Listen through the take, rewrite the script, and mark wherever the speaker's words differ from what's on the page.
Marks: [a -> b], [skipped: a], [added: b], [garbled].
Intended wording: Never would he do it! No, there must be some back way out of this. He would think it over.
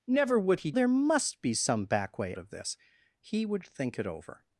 Never would he [skipped: do it! No,] there must be some back way [skipped: out] of this. He would think it over.